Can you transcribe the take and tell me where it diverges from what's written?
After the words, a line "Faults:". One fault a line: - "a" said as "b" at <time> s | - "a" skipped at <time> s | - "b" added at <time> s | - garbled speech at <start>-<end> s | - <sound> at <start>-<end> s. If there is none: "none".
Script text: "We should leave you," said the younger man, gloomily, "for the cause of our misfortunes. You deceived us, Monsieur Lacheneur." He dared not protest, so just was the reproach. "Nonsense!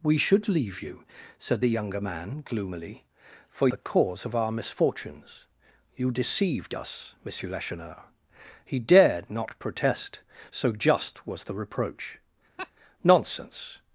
"We should leave you," said the younger man, gloomily, "for the cause of our misfortunes. You deceived us, Monsieur Lacheneur." He dared not protest, so just was the reproach. "Nonsense!
Faults:
- laugh at 12.6-12.7 s